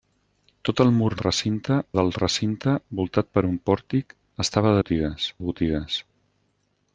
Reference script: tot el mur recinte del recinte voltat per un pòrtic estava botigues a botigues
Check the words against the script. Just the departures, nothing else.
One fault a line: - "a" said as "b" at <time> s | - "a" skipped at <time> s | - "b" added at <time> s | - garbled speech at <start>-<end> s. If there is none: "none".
none